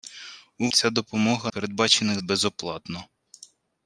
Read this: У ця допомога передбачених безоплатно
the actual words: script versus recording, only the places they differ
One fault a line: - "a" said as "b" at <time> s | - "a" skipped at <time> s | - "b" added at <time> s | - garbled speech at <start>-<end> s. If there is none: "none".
none